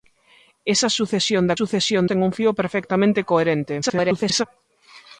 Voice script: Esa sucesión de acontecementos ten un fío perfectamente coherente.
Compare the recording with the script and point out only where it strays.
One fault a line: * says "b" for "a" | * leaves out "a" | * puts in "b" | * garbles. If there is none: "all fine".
* says "sucesión" for "acontecementos"
* garbles